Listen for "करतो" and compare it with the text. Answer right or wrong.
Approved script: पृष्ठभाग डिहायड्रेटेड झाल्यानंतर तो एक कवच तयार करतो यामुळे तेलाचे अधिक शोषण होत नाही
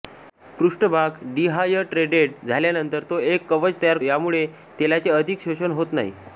wrong